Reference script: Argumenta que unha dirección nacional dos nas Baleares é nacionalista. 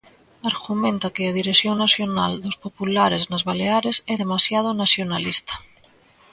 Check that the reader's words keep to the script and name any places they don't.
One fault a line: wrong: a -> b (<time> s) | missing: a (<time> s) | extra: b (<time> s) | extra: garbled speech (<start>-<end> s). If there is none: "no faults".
wrong: unha -> a (1.2 s)
extra: populares (2.6 s)
extra: demasiado (4.2 s)